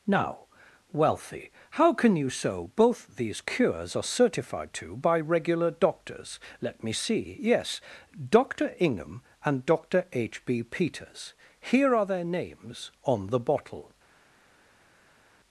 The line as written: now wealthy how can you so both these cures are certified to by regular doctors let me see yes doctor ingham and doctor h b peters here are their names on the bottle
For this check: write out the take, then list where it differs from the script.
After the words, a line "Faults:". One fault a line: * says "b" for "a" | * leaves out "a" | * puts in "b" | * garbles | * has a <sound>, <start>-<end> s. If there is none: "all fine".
now wealthy how can you so both these cures are certified to by regular doctors let me see yes doctor ingham and doctor h b peters here are their names on the bottle
Faults:
all fine